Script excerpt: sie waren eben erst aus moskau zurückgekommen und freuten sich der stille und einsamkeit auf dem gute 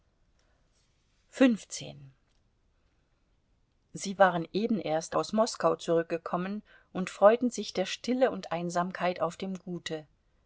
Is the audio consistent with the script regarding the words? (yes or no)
yes